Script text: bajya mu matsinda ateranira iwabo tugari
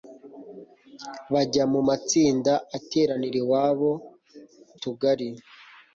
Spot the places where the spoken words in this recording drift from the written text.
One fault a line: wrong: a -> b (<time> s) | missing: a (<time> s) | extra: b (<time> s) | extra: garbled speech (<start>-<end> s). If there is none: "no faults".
no faults